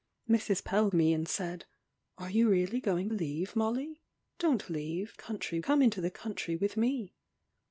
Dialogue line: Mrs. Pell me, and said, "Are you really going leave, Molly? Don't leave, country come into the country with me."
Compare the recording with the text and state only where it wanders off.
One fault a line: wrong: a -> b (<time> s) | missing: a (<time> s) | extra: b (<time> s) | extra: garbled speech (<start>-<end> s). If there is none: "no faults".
no faults